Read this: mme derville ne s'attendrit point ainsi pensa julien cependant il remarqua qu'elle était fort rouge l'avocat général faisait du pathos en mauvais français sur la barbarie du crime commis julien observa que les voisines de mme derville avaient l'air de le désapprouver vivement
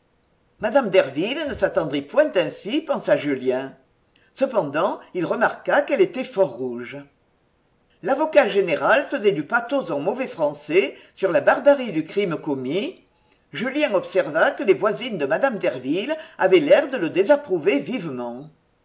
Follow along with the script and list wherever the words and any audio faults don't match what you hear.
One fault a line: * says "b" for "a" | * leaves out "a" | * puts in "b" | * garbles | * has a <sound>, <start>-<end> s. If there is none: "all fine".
all fine